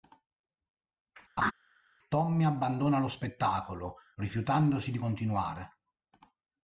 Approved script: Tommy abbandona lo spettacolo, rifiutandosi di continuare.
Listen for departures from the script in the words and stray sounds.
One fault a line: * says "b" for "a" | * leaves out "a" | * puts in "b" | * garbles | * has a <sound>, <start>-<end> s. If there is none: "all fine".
* has a laugh, 1.4-1.5 s